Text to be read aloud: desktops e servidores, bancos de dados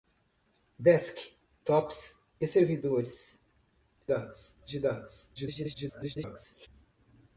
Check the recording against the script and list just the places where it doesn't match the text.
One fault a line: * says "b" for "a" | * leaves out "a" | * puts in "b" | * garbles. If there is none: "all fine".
* says "dados" for "bancos"
* garbles